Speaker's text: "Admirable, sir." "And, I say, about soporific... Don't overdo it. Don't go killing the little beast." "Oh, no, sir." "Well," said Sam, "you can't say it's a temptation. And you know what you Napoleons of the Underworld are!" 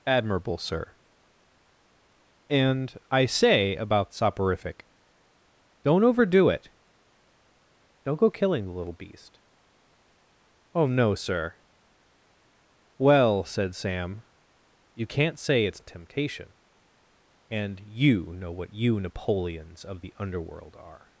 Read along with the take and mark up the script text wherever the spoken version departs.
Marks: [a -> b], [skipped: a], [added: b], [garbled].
"Admirable, sir." "And, I say, about soporific... Don't overdo it. Don't go killing the little beast." "Oh, no, sir." "Well," said Sam, "you can't say it's a temptation. And you know what you Napoleons of the Underworld are!"